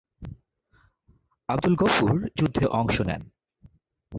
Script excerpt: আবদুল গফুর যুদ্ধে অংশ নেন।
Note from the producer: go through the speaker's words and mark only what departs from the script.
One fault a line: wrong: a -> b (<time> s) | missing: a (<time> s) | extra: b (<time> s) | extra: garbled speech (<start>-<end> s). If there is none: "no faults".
no faults